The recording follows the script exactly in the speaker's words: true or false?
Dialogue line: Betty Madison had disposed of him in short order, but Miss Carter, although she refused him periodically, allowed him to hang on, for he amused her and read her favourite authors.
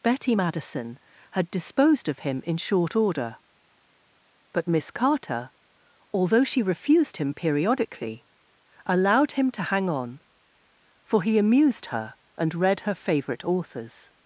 true